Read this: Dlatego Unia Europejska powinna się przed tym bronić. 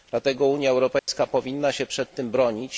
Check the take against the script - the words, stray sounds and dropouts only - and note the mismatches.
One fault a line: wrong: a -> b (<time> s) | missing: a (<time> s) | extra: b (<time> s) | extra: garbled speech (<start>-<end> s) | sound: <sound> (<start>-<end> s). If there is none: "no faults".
sound: dropout (1.0-1.1 s)